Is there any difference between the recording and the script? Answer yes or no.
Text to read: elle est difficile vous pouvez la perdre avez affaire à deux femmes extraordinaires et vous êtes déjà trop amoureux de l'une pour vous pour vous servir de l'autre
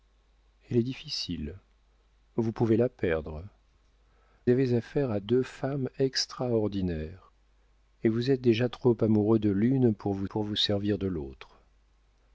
no